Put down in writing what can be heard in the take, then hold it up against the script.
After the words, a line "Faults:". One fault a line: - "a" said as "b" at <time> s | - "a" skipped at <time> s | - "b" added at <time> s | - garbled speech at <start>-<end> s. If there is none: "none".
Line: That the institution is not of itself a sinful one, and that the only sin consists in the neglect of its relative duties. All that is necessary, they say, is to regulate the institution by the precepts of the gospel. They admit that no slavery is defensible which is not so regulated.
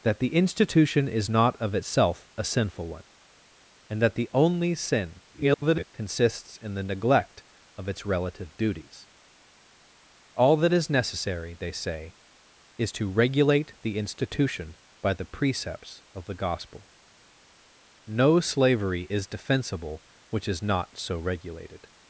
That the institution is not of itself a sinful one, and that the only sin [garbled] consists in the neglect of its relative duties. All that is necessary, they say, is to regulate the institution by the precepts of the gospel. No slavery is defensible which is not so regulated.
Faults:
- garbled speech at 5.3-5.9 s
- "They admit that" skipped at 16.9 s